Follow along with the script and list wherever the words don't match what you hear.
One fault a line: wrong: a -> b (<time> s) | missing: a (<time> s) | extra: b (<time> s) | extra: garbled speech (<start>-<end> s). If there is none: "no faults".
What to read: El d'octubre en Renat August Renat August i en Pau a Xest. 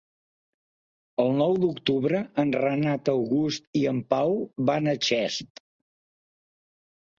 extra: nou (1.4 s)
missing: Renat August (3.7 s)
extra: van (4.7 s)